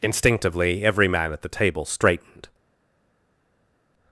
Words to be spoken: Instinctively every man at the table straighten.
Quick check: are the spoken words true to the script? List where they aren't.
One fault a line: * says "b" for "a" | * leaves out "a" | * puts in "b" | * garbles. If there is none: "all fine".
* says "straightened" for "straighten"